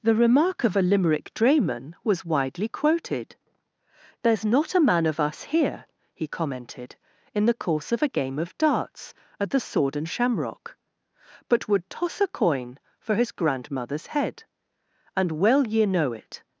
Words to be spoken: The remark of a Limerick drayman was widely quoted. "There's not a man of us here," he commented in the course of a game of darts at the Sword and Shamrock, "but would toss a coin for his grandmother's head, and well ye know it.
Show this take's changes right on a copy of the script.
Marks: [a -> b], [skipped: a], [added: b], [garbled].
The remark of a Limerick drayman was widely quoted. "There's not a man of us here," he commented in the course of a game of darts at the Sword and Shamrock, "but would toss a coin for his grandmother's head, and well ye know it.